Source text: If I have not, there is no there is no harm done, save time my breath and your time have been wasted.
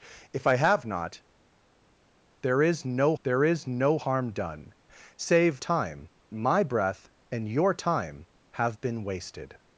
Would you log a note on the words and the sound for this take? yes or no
no